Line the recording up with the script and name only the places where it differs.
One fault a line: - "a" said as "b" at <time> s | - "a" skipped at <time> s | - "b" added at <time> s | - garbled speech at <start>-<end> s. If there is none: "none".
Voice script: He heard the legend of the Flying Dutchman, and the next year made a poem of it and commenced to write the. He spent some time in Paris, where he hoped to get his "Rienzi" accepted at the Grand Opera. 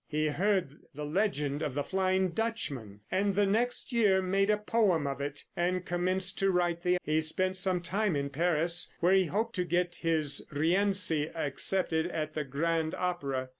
none